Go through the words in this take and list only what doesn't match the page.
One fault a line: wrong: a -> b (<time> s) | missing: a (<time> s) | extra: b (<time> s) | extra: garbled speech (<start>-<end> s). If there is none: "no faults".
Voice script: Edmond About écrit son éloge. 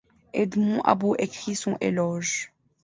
no faults